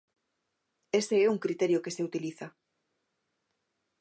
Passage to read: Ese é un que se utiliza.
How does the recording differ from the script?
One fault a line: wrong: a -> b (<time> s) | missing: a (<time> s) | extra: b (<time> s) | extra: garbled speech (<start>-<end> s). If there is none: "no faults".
extra: criterio (1.4 s)